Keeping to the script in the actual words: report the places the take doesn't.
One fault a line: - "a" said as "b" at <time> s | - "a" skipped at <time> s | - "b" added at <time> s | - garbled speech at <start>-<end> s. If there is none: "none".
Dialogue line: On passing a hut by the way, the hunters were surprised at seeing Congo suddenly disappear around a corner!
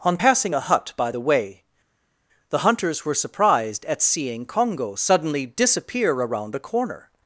none